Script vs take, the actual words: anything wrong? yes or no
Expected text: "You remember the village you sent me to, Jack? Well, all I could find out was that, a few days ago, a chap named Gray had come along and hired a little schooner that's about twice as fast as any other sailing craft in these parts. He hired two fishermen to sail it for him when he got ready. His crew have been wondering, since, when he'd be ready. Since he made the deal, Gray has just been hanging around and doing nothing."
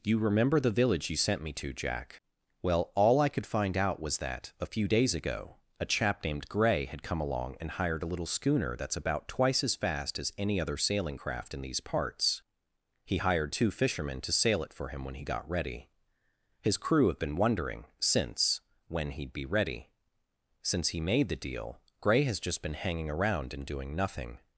no